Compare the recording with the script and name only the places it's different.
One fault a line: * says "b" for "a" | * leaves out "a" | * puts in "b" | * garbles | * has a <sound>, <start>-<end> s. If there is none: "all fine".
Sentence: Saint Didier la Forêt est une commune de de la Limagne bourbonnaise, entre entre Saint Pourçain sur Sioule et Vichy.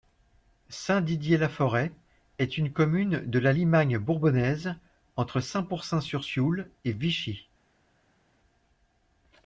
* leaves out "de"
* leaves out "entre"